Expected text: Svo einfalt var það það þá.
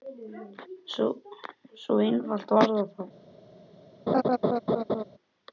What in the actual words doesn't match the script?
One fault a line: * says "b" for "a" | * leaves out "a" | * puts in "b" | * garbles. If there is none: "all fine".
* leaves out "það"